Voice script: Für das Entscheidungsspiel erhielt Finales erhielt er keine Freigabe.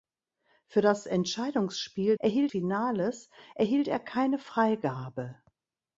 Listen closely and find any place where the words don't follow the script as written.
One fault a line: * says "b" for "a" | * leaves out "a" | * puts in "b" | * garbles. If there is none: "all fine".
all fine